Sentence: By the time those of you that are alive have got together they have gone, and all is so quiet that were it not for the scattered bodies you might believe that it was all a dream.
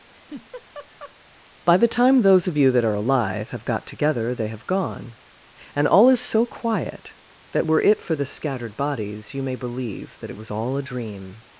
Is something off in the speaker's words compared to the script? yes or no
yes